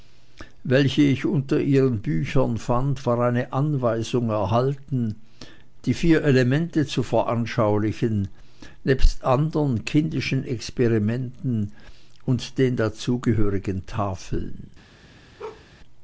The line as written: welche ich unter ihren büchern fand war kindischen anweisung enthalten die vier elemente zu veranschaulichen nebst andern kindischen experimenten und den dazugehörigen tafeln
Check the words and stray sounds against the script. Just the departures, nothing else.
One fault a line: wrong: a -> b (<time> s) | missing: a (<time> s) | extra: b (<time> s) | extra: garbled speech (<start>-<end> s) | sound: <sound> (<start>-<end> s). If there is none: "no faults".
wrong: kindischen -> eine (3.2 s)
sound: bark (15.4-15.7 s)